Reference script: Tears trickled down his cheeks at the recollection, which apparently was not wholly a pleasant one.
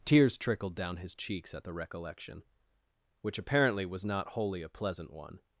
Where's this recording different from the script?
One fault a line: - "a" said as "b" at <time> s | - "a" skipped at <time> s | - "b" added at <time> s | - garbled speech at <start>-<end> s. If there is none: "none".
none